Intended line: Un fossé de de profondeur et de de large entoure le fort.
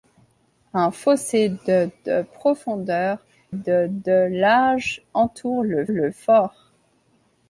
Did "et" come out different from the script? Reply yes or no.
yes